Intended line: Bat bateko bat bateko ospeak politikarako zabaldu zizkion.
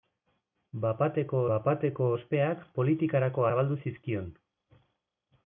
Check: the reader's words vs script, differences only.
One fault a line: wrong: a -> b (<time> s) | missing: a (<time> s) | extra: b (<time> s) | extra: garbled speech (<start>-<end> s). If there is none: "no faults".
no faults